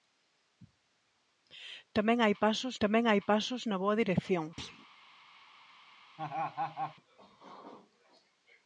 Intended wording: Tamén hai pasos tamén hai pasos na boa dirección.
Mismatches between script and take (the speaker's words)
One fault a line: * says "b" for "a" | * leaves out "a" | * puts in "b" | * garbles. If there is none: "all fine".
all fine